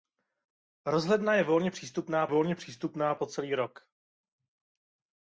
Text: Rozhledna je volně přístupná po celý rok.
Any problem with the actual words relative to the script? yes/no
yes